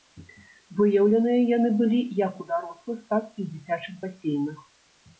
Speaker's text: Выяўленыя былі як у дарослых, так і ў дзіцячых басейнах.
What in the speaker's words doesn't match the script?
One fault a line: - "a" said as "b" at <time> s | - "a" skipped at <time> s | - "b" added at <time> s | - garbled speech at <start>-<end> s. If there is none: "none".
- "яны" added at 1.6 s